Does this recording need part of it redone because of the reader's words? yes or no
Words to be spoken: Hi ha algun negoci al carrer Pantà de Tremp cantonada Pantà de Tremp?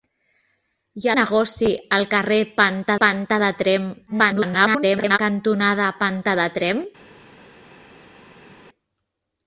yes